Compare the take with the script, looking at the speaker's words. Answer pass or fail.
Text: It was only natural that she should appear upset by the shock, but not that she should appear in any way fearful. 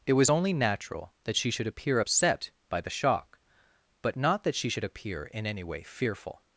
pass